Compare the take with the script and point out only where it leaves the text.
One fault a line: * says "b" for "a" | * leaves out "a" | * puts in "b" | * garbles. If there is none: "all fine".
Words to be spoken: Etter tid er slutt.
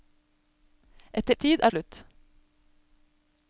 all fine